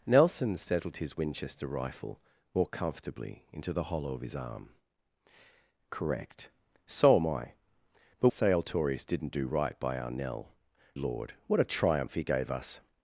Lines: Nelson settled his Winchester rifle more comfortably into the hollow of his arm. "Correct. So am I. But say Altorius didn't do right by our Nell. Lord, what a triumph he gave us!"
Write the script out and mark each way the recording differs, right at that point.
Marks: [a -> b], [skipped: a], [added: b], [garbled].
Nelson settled his Winchester rifle more comfortably into the hollow of his arm. "Correct. So am I. But say Altorius didn't do right by our Nell. Lord, what a triumph he gave us!"